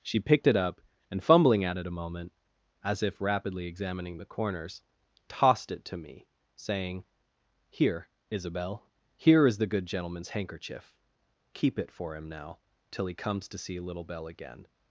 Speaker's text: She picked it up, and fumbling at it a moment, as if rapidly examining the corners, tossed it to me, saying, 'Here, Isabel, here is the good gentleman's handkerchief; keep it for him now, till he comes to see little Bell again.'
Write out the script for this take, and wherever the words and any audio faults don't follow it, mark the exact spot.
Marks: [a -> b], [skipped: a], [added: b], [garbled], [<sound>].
She picked it up, and fumbling at it a moment, as if rapidly examining the corners, tossed it to me, saying, 'Here, Isabel, here is the good gentleman's handkerchief; keep it for him now, till he comes to see little Bell again.'